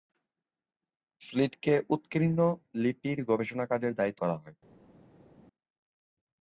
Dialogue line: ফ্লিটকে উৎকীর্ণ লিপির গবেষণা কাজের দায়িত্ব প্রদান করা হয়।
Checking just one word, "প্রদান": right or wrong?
wrong